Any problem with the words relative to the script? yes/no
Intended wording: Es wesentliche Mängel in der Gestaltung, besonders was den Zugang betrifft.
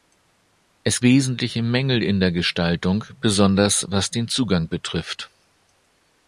no